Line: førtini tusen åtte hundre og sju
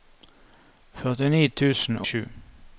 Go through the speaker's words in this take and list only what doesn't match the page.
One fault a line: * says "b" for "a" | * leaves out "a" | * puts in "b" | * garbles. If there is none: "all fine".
* leaves out "åtte hundre og"